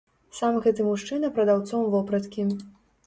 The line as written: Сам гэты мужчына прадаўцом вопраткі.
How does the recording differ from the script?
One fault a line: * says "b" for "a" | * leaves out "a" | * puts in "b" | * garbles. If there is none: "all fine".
all fine